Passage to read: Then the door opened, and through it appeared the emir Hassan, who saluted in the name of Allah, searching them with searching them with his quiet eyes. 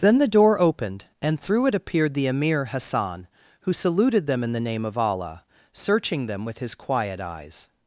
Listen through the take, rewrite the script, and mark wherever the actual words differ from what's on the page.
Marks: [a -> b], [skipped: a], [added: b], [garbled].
Then the door opened, and through it appeared the emir Hassan, who saluted [added: them] in the name of Allah, searching them with [skipped: searching them with] his quiet eyes.